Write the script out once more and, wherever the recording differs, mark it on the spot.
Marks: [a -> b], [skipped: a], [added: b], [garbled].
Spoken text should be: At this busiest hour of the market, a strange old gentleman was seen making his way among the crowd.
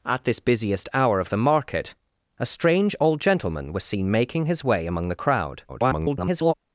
At this busiest hour of the market, a strange old gentleman was seen making his way among the crowd. [garbled]